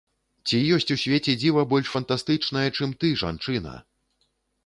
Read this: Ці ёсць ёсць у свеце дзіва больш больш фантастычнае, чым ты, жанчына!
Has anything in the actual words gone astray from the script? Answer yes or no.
yes